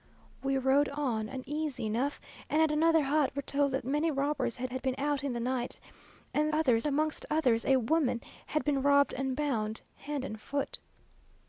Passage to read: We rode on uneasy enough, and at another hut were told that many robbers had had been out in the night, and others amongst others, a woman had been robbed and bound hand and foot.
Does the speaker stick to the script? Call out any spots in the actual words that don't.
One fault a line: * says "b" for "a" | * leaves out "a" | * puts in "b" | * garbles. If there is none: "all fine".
all fine